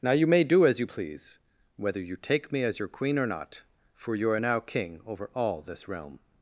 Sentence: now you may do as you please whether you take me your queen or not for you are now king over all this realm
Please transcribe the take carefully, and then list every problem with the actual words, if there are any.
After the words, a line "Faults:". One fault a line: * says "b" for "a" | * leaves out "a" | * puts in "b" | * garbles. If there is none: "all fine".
now you may do as you please whether you take me as your queen or not for you are now king over all this realm
Faults:
* puts in "as"